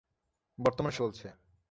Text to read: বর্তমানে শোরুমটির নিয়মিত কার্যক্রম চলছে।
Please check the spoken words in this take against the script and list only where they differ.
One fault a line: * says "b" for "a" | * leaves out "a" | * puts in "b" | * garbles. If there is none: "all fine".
* leaves out "শোরুমটির নিয়মিত কার্যক্রম"